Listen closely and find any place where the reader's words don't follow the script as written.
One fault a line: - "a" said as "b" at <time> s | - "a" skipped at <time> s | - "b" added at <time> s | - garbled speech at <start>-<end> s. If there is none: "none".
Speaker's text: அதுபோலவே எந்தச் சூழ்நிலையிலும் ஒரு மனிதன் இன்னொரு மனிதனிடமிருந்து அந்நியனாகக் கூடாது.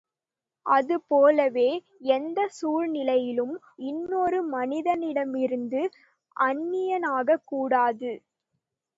- "ஒரு மனிதன்" skipped at 3.5 s